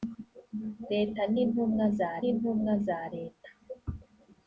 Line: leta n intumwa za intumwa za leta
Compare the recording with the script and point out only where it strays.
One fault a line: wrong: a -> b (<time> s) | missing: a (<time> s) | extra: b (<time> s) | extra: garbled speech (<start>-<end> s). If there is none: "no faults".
no faults